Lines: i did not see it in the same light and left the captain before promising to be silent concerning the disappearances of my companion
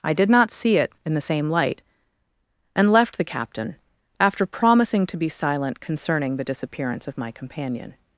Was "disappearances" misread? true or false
true